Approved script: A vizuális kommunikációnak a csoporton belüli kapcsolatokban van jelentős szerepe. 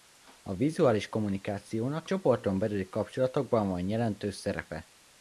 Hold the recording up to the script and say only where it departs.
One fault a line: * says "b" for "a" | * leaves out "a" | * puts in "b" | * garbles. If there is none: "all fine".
* leaves out "a"